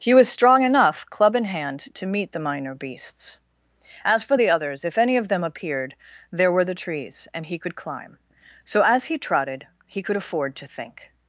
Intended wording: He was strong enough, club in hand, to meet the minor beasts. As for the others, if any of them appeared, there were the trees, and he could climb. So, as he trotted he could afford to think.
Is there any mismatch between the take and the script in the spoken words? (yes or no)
no